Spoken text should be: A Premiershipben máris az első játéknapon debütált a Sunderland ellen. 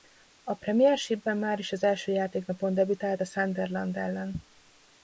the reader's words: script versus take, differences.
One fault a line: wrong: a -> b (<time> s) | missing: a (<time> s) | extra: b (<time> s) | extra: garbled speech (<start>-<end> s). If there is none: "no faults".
no faults